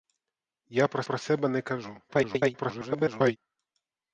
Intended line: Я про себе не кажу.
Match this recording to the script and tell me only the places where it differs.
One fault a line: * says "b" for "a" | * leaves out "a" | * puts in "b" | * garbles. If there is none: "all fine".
* puts in "про"
* garbles